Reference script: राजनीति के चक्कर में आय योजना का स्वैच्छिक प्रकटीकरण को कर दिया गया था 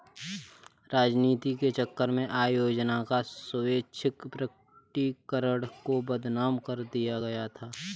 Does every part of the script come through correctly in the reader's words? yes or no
no